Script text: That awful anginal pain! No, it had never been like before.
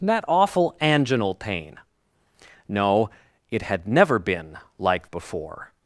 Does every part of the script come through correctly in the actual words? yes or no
yes